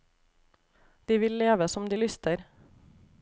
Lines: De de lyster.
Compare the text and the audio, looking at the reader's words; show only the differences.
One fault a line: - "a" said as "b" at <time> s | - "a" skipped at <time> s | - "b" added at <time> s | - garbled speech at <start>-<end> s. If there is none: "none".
- "vil leve som" added at 1.2 s